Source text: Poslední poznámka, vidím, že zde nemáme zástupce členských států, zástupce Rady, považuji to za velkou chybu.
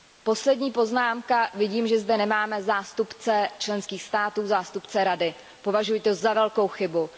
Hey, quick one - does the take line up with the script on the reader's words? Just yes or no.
yes